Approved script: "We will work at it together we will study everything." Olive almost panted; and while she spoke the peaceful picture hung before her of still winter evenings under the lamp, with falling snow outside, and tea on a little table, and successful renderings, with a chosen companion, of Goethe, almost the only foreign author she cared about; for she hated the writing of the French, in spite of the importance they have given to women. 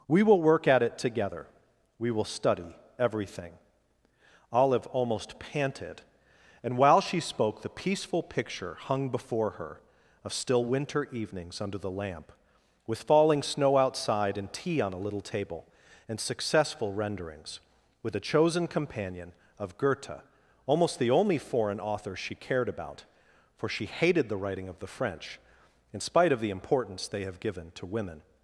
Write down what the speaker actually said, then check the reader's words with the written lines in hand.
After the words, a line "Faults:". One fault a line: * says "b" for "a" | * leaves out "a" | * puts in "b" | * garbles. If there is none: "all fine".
"We will work at it together we will study everything." Olive almost panted; and while she spoke the peaceful picture hung before her of still winter evenings under the lamp, with falling snow outside, and tea on a little table, and successful renderings, with a chosen companion, of Goethe, almost the only foreign author she cared about; for she hated the writing of the French, in spite of the importance they have given to women.
Faults:
all fine